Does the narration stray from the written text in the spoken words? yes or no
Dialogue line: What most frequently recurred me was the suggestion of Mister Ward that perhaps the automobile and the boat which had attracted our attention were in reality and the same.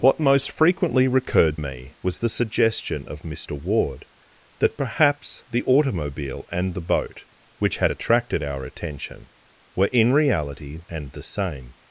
no